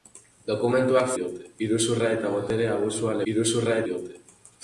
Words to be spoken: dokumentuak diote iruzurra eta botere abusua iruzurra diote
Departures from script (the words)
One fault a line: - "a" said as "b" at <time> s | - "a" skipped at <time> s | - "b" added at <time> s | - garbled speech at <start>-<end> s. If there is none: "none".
none